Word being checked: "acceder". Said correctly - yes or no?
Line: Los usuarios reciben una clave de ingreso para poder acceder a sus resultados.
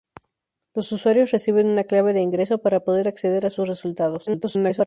yes